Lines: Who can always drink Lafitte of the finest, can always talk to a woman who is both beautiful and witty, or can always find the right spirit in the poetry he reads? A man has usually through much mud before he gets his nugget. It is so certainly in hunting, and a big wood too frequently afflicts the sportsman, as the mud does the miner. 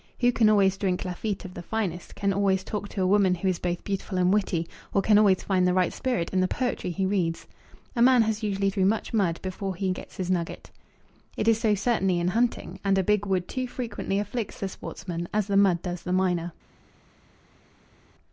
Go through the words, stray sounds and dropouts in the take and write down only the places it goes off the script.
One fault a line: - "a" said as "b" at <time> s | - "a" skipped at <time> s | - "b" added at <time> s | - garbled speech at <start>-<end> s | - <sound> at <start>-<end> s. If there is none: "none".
none